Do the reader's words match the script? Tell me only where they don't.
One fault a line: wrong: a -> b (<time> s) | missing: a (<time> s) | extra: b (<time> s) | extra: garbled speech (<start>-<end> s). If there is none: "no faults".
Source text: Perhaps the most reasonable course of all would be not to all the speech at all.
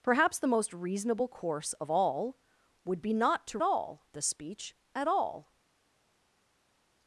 no faults